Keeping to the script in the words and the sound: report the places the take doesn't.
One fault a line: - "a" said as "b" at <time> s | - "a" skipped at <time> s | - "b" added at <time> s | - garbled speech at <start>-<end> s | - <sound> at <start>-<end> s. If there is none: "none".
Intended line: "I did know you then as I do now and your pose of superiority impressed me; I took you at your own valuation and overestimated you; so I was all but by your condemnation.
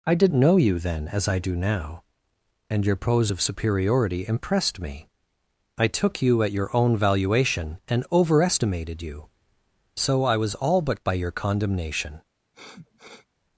- sniff at 12.5-13.3 s